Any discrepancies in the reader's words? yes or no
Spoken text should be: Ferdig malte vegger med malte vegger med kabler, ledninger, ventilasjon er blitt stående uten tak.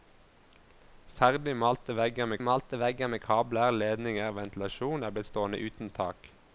no